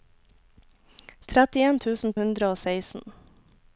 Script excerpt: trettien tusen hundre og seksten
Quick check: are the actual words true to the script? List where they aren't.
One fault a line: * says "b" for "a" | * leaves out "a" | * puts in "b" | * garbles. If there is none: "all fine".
all fine